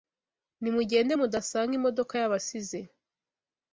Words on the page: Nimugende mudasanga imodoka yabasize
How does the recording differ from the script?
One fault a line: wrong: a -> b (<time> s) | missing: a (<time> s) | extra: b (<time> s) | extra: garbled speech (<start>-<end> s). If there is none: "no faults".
no faults